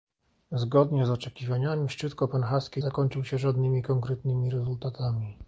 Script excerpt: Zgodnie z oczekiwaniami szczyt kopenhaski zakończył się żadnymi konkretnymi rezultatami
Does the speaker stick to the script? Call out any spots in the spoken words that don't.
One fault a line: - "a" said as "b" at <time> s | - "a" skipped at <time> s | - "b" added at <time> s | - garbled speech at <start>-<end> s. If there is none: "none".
none